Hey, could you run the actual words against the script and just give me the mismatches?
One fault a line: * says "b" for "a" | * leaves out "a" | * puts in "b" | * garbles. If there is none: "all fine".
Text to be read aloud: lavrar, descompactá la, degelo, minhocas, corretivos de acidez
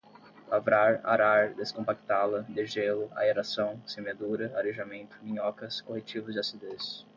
* puts in "arar"
* puts in "aeração semeadura arejamento"